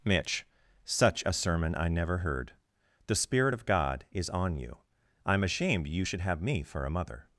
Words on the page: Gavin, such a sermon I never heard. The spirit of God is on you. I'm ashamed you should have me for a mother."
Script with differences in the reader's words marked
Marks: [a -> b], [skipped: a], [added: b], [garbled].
[Gavin, -> Mitch] such a sermon I never heard. The spirit of God is on you. I'm ashamed you should have me for a mother."